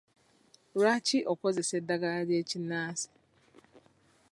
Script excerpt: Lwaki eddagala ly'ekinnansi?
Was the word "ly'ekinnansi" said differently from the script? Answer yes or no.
no